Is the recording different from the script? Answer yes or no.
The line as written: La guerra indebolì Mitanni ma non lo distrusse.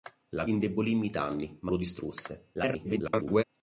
yes